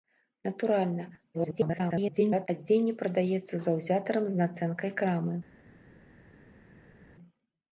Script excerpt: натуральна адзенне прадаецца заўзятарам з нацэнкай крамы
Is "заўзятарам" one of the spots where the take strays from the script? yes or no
no